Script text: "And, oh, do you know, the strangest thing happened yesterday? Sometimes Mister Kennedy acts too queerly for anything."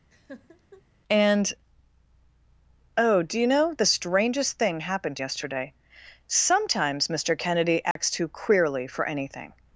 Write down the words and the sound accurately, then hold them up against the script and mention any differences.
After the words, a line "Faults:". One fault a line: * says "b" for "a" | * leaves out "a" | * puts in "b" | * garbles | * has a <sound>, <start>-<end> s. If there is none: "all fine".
"And, oh, do you know, the strangest thing happened yesterday? Sometimes Mister Kennedy acts too queerly for anything."
Faults:
* has a laugh, 0.1-0.8 s
* has a dropout, 7.9-8.0 s